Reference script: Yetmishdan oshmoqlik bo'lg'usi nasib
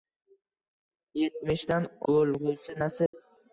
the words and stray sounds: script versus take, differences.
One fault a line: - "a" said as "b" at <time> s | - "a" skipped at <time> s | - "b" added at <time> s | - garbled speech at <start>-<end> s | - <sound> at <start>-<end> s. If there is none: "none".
- "oshmoqlik" skipped at 1.9 s
- dropout at 3.1-3.1 s